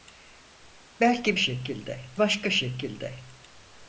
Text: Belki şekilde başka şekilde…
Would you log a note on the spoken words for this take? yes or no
no